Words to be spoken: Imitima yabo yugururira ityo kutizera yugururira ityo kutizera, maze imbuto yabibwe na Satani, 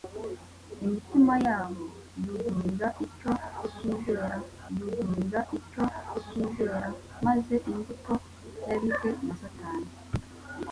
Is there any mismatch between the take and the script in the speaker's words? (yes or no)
no